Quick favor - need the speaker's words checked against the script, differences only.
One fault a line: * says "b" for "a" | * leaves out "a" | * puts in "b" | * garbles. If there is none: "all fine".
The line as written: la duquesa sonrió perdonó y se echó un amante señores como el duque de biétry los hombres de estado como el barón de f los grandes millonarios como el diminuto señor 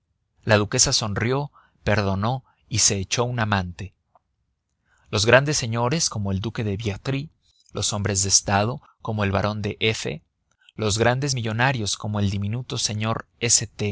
* puts in "los grandes"